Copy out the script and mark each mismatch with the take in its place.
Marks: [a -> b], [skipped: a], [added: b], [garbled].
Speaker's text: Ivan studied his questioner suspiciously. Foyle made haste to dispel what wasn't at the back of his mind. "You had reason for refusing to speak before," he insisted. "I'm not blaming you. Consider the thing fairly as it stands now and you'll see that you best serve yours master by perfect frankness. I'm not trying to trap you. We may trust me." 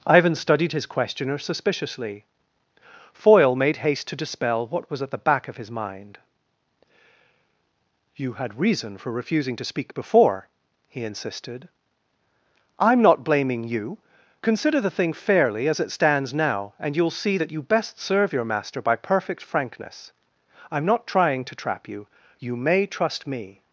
Ivan studied his questioner suspiciously. Foyle made haste to dispel what [wasn't -> was] at the back of his mind. "You had reason for refusing to speak before," he insisted. "I'm not blaming you. Consider the thing fairly as it stands now and you'll see that you best serve [yours -> your] master by perfect frankness. I'm not trying to trap you. [We -> You] may trust me."